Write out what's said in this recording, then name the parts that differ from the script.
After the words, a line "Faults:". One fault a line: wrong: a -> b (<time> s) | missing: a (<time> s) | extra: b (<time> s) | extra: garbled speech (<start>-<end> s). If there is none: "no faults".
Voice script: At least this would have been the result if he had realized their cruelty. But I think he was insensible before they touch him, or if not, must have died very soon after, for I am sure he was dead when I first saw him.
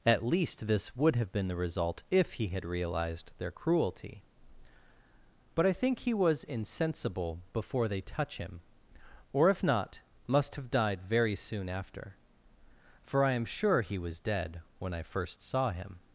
At least this would have been the result if he had realized their cruelty. But I think he was insensible before they touch him, or if not, must have died very soon after, for I am sure he was dead when I first saw him.
Faults:
no faults